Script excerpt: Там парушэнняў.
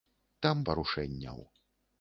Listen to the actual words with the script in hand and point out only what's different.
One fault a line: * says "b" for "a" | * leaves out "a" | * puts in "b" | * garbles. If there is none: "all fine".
all fine